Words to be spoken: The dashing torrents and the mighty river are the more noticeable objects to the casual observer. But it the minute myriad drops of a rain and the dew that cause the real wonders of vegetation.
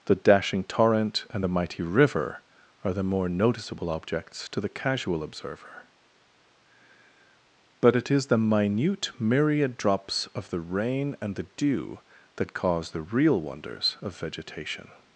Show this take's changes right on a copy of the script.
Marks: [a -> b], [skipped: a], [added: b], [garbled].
The dashing [torrents -> torrent] and the mighty river are the more noticeable objects to the casual observer. But it [added: is] the minute myriad drops of [a -> the] rain and the dew that cause the real wonders of vegetation.